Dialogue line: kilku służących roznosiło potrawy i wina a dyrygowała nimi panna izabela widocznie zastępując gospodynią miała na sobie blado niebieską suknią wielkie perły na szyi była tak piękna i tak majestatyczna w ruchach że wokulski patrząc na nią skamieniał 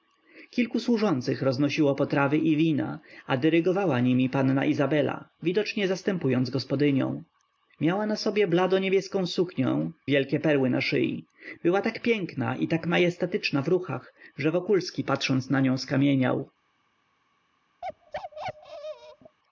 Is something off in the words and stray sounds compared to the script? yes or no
yes